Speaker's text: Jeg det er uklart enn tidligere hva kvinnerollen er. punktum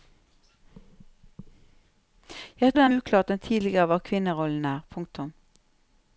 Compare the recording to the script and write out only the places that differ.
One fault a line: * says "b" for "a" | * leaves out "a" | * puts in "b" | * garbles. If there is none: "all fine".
all fine